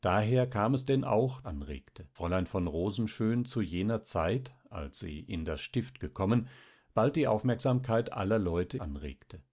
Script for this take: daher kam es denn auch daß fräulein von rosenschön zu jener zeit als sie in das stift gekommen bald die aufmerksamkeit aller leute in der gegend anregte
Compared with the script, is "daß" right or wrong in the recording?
wrong